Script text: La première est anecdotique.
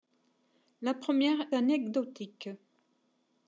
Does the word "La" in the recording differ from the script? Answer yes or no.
no